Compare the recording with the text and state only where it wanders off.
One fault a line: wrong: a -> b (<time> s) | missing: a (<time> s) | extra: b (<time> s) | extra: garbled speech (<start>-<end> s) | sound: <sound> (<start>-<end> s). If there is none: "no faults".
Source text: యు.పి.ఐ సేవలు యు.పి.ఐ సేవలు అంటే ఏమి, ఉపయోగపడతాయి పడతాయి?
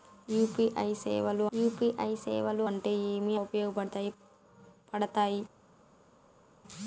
no faults